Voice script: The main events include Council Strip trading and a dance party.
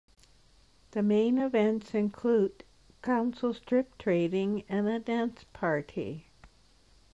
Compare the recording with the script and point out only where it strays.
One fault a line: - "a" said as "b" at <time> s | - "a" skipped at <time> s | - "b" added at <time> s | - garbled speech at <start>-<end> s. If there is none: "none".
none